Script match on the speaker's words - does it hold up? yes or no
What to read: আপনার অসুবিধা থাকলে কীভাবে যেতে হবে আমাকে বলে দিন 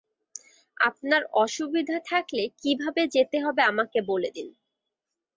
yes